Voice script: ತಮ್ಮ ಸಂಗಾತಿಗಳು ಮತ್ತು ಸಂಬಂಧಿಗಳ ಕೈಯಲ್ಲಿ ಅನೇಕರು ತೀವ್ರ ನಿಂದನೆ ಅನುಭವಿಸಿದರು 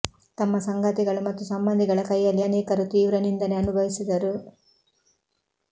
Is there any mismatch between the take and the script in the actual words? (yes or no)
no